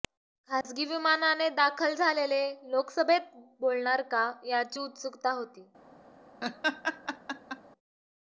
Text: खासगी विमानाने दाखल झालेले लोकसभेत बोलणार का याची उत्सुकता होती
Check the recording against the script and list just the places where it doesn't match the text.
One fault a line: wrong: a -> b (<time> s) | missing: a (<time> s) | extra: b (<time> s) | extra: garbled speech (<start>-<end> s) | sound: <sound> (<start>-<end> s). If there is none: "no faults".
sound: dropout (0.6-0.6 s)
sound: laugh (6.4-7.6 s)